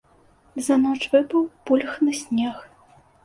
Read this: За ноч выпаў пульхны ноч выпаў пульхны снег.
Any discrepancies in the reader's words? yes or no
yes